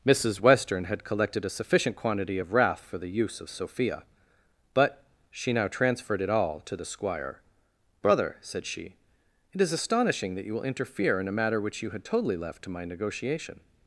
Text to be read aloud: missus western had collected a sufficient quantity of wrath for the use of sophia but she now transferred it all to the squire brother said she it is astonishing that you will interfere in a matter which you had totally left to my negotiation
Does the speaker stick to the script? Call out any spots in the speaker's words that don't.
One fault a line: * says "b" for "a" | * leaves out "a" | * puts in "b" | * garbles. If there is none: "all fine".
all fine